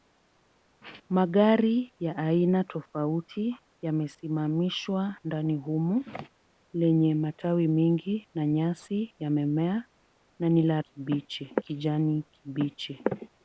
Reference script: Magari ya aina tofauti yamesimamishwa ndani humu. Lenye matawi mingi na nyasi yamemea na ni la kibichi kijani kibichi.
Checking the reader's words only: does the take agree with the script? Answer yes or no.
yes